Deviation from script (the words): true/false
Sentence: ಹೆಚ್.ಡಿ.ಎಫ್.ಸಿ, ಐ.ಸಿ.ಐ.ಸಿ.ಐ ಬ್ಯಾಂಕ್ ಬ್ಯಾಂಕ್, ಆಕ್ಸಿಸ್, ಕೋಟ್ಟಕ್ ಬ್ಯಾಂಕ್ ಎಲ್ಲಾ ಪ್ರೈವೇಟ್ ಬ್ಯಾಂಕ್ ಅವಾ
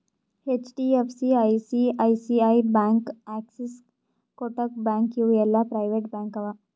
true